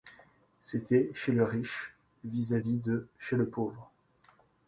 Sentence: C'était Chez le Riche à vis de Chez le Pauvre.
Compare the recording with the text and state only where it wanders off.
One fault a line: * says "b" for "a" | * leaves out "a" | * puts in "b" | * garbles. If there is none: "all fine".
* puts in "vis"